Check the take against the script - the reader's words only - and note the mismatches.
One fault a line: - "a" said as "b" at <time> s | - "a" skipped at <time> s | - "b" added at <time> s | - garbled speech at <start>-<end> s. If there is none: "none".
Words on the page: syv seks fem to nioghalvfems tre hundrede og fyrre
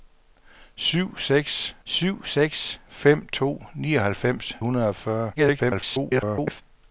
- "syv seks" added at 1.8 s
- "tre" skipped at 4.5 s
- garbled speech at 5.4-6.6 s